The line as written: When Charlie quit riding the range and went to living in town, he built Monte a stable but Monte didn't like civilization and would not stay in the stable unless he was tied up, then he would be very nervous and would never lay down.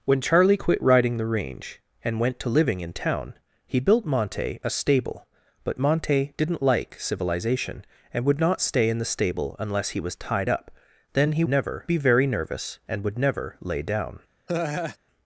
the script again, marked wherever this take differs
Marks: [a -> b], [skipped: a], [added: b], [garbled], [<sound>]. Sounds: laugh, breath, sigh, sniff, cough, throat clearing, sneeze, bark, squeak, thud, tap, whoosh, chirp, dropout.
When Charlie quit riding the range and went to living in town, he built Monte a stable but Monte didn't like civilization and would not stay in the stable unless he was tied up, then he [would -> never] be very nervous and would never lay down. [laugh]